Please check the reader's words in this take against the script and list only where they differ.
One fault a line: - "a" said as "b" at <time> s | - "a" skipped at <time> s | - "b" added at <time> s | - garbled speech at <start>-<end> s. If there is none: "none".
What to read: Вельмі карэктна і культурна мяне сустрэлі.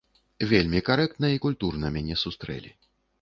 none